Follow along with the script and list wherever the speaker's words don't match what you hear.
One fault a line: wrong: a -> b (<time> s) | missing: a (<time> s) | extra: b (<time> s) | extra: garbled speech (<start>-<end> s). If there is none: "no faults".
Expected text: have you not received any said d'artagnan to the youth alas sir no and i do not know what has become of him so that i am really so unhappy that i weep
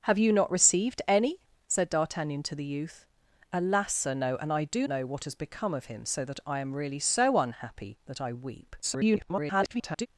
missing: not (4.9 s)
extra: garbled speech (8.8-10.1 s)